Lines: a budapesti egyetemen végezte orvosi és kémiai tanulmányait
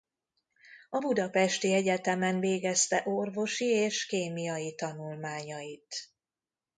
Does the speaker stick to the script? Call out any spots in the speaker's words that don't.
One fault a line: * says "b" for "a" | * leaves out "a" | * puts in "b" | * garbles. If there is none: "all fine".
all fine